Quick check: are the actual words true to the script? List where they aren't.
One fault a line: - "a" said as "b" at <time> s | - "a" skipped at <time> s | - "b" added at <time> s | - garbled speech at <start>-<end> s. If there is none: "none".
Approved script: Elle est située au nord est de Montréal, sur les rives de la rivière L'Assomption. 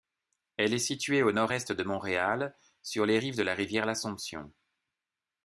none